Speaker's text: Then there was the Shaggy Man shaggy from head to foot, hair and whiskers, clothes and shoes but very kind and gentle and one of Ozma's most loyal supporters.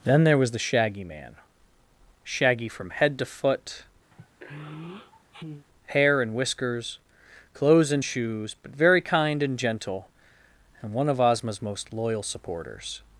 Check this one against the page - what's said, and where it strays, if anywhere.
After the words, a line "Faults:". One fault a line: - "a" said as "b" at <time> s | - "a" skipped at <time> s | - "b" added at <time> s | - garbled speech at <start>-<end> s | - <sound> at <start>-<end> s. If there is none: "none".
Then there was the Shaggy Man shaggy from head to foot, hair and whiskers, clothes and shoes but very kind and gentle and one of Ozma's most loyal supporters.
Faults:
- sigh at 4.1-5.7 s